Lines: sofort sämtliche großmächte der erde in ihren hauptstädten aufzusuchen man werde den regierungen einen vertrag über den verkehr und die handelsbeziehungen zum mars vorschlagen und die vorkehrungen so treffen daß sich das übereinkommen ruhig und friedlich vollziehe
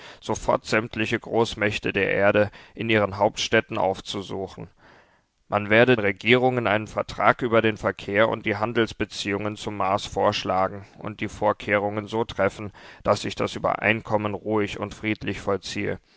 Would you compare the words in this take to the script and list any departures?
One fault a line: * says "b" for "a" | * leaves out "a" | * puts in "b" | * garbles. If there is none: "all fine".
* leaves out "den"